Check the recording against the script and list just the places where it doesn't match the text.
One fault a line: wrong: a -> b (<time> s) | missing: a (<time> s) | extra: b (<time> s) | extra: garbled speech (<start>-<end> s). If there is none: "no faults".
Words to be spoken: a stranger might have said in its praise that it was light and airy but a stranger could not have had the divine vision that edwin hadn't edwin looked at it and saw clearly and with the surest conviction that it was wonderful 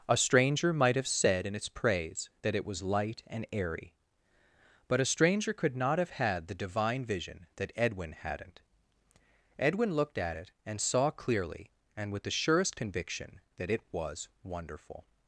no faults